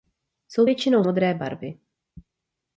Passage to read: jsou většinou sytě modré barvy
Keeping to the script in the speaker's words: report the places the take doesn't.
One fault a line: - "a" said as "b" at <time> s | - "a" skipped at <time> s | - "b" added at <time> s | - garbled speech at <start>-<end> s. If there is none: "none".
- "sytě" skipped at 1.0 s